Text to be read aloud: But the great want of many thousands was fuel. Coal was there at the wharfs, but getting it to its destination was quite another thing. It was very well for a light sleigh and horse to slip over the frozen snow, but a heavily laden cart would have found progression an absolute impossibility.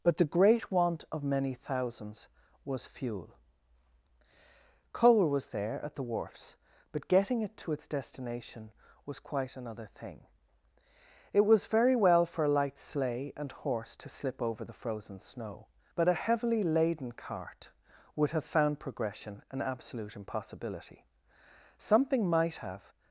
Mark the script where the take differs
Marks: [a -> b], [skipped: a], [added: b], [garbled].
But the great want of many thousands was fuel. Coal was there at the wharfs, but getting it to its destination was quite another thing. It was very well for a light sleigh and horse to slip over the frozen snow, but a heavily laden cart would have found progression an absolute impossibility. [added: Something might have]